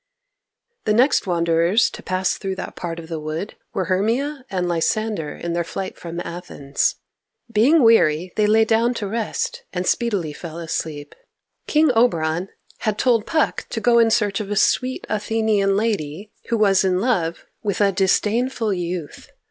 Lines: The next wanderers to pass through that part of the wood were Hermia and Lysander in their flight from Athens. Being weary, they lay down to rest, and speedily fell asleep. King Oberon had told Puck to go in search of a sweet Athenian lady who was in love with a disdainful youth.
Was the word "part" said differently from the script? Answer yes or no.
no